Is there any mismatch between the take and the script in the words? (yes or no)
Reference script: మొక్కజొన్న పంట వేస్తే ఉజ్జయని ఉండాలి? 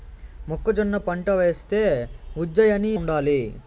no